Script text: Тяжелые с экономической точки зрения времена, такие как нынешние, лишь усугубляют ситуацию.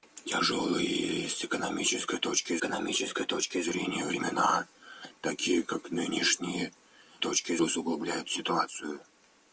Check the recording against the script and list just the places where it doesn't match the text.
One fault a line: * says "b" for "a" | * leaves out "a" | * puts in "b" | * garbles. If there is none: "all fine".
* puts in "экономической точки"
* says "точки" for "лишь"